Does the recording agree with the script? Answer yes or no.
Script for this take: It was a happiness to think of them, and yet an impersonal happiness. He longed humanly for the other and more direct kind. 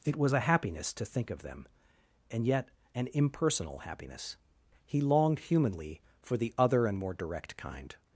yes